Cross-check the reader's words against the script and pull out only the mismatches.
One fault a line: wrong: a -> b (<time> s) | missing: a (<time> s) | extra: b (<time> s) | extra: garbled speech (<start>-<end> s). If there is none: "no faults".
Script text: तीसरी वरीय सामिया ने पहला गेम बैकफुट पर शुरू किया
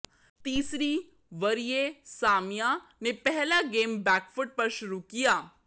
no faults